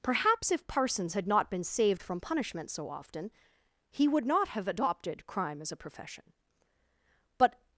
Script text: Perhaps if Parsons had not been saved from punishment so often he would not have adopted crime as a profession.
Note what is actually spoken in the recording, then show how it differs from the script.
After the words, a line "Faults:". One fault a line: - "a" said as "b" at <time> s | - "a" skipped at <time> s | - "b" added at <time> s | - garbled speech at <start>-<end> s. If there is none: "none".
Perhaps if Parsons had not been saved from punishment so often he would not have adopted crime as a profession. But
Faults:
- "But" added at 7.4 s